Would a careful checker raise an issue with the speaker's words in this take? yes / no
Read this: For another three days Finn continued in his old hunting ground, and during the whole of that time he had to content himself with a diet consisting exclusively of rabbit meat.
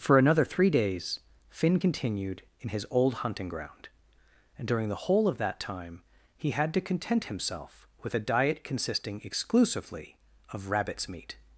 yes